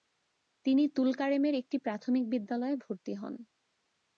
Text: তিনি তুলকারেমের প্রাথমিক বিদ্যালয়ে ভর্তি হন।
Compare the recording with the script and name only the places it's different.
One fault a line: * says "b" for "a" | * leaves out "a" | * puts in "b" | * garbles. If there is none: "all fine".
* puts in "একটি"